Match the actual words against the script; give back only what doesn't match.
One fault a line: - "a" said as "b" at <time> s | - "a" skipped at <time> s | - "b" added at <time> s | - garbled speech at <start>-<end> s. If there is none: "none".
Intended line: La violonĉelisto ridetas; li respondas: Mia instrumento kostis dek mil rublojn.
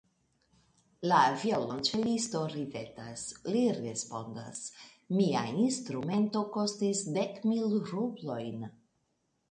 none